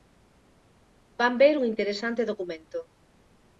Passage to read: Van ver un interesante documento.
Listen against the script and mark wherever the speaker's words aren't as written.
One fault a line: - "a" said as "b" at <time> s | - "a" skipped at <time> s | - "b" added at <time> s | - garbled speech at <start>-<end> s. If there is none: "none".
none